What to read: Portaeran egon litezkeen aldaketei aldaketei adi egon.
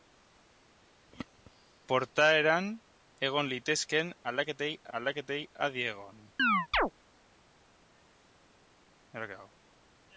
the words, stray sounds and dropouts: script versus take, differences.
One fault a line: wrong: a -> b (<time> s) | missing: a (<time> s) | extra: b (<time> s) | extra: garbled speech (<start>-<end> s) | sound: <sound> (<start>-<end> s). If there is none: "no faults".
sound: chirp (6.4-6.9 s)